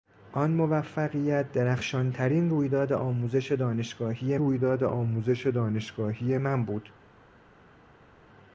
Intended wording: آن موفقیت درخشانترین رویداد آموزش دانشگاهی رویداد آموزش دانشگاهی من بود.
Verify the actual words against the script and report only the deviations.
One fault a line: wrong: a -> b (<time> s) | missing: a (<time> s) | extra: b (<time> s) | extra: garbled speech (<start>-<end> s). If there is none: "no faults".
no faults